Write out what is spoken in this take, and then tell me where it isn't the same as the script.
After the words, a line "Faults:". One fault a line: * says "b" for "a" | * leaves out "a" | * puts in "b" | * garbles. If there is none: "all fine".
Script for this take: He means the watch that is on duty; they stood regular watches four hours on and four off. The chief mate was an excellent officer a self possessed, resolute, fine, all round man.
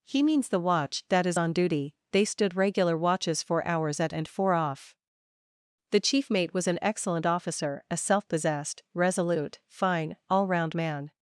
He means the watch that is on duty; they stood regular watches four hours at and four off. The chief mate was an excellent officer a self possessed, resolute, fine, all round man.
Faults:
* says "at" for "on"